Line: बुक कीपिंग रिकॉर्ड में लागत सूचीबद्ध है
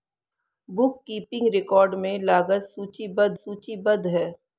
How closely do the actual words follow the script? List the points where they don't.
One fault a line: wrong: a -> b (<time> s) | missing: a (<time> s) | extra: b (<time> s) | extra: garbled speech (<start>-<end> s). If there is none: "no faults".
extra: सूचीबद्ध (3.3 s)